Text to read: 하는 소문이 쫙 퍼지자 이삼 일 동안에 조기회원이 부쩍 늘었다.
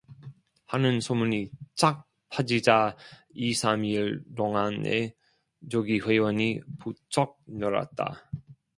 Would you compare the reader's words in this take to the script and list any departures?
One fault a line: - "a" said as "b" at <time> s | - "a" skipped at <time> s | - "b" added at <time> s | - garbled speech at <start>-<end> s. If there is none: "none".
none